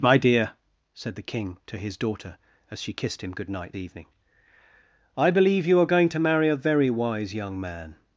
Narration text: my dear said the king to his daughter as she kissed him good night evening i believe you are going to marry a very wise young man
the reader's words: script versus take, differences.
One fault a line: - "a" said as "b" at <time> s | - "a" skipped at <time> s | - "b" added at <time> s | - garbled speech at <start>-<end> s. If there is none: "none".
none